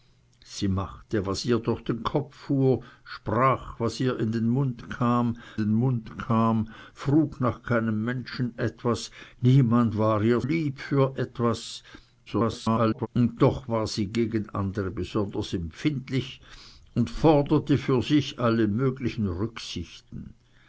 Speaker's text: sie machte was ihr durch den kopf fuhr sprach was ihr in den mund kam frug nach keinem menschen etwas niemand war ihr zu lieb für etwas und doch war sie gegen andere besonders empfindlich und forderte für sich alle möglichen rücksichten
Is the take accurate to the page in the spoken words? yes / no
no